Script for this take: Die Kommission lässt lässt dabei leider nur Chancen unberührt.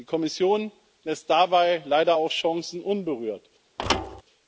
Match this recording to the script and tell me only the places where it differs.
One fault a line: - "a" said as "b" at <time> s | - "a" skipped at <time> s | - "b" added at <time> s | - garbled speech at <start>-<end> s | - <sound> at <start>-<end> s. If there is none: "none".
- "lässt" skipped at 1.3 s
- "nur" said as "auch" at 2.1 s
- thud at 3.8-4.2 s